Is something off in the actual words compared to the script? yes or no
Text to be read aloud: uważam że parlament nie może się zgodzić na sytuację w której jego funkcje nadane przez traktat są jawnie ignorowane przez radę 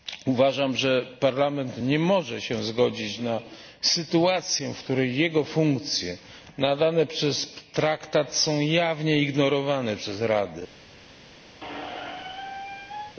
no